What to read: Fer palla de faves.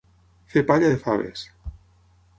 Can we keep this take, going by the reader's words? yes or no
yes